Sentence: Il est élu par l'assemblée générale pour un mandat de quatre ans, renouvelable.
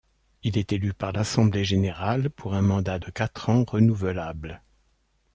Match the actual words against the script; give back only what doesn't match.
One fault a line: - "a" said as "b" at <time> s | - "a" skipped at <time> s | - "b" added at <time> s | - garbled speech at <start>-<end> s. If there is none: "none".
none